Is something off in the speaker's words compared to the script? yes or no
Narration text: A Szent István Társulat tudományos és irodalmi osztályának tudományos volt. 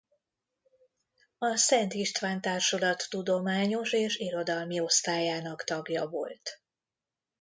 yes